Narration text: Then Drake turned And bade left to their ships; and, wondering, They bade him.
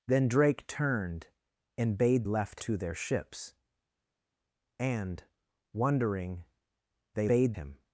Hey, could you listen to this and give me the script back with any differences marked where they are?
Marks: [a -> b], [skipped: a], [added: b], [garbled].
Then Drake turned And bade left to their ships; and, wondering, They bade him.